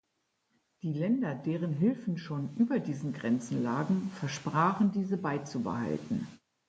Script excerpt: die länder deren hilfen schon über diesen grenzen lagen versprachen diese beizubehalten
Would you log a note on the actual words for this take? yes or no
no